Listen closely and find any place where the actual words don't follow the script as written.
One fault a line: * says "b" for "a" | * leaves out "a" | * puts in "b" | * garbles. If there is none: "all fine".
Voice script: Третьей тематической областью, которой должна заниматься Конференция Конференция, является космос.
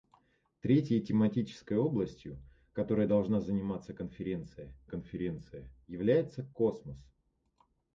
all fine